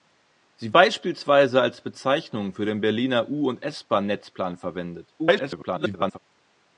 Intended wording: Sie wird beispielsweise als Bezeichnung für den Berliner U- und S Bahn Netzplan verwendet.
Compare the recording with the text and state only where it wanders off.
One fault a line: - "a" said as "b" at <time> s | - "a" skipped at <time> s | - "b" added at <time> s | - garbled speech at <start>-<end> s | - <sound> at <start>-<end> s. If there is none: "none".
- "wird" skipped at 0.7 s
- garbled speech at 5.2-6.2 s